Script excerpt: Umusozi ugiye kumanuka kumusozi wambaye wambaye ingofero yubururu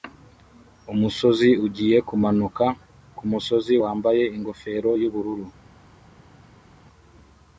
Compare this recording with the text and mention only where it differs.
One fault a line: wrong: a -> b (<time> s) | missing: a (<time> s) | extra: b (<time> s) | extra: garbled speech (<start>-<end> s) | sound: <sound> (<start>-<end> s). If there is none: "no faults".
missing: wambaye (4.2 s)